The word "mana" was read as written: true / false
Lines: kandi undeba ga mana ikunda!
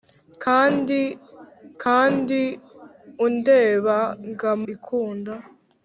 false